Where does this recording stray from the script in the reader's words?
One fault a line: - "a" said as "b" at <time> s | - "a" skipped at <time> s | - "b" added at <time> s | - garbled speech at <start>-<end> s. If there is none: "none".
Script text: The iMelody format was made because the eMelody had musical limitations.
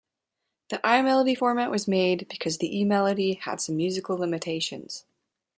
- "some" added at 3.6 s